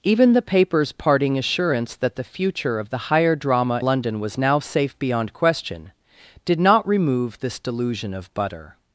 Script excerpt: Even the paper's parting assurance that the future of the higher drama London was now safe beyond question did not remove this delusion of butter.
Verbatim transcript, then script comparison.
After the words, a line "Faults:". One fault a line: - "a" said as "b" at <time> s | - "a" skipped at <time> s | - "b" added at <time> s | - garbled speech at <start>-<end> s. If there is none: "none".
Even the paper's parting assurance that the future of the higher drama London was now safe beyond question did not remove this delusion of butter.
Faults:
none